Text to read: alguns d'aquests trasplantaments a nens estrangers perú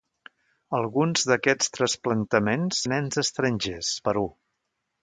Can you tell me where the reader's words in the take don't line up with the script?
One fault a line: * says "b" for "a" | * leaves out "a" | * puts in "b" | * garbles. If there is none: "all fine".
all fine